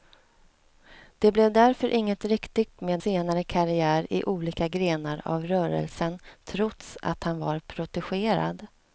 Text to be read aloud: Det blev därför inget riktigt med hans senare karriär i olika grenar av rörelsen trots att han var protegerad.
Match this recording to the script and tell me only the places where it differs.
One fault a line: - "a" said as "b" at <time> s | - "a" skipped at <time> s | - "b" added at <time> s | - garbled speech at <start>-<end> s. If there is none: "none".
- "hans" skipped at 3.0 s